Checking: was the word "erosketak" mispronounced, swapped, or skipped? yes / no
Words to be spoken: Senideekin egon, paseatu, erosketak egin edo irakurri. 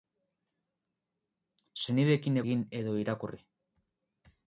yes